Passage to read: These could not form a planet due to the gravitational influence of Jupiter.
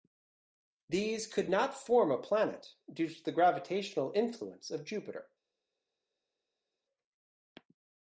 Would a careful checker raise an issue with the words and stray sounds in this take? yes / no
no